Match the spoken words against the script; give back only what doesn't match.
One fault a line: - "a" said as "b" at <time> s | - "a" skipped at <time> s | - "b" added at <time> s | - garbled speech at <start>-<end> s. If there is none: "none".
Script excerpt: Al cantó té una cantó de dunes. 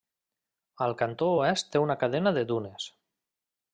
- "oest" added at 1.4 s
- "cantó" said as "cadena" at 2.0 s